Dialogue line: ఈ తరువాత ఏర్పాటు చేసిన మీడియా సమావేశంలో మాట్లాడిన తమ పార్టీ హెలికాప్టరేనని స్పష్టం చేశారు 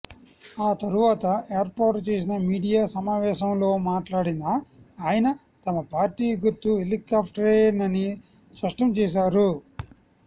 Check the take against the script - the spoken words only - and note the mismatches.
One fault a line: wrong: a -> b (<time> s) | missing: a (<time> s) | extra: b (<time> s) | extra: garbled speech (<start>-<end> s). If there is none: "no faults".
wrong: ఈ -> ఆ (0.6 s)
extra: ఆయన (5.0 s)
extra: గుర్తు (6.4 s)